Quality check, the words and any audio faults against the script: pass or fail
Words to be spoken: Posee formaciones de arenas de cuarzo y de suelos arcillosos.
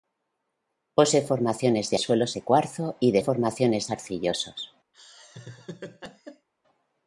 fail